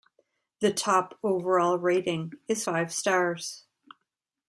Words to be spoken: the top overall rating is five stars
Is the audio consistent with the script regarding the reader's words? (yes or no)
yes